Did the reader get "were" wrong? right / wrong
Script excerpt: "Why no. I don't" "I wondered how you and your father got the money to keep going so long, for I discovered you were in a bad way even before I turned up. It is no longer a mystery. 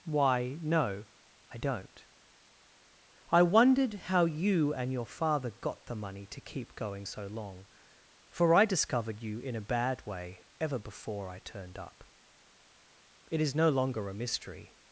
wrong